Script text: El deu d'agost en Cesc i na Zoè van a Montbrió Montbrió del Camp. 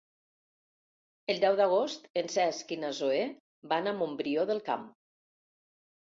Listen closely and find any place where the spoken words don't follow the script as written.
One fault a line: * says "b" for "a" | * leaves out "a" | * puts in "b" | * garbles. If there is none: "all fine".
* leaves out "Montbrió"